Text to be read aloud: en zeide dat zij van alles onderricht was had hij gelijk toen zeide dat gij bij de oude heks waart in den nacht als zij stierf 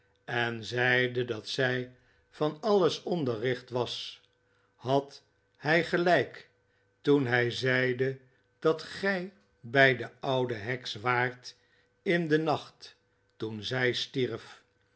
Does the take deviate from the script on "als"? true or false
true